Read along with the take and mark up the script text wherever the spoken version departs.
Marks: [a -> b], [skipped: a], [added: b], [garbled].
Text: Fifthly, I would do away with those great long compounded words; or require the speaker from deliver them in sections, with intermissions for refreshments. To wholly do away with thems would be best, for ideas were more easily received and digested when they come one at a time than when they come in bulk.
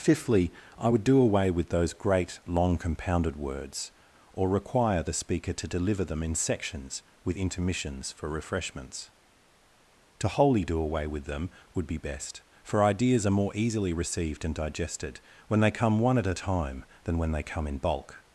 Fifthly, I would do away with those great long compounded words; or require the speaker [from -> to] deliver them in sections, with intermissions for refreshments. To wholly do away with [thems -> them] would be best, for ideas [were -> are] more easily received and digested when they come one at a time than when they come in bulk.